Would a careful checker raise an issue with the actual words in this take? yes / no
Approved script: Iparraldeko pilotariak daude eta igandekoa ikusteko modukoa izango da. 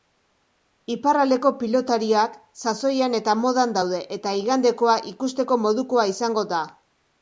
yes